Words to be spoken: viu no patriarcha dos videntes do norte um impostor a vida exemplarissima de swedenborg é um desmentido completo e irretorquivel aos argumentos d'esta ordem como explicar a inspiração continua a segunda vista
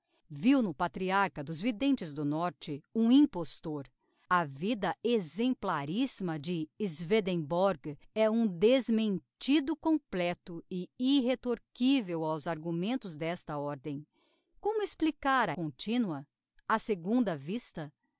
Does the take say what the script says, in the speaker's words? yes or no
no